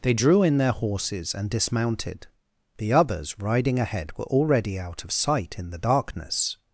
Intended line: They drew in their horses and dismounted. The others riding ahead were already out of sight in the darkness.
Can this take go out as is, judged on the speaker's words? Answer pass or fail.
pass